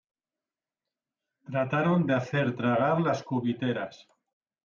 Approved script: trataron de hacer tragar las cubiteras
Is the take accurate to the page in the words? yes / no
yes